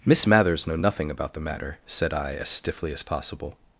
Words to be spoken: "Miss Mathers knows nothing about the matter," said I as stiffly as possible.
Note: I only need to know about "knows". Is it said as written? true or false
false